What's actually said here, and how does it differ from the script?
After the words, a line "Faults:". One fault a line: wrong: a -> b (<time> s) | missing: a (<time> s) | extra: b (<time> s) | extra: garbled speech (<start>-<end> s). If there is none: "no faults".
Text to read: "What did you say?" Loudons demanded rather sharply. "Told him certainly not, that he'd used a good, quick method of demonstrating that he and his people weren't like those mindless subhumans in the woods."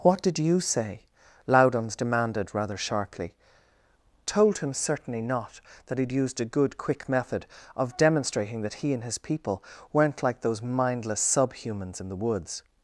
"What did you say?" Loudons demanded rather sharply. "Told him certainly not, that he'd used a good, quick method of demonstrating that he and his people weren't like those mindless subhumans in the woods."
Faults:
no faults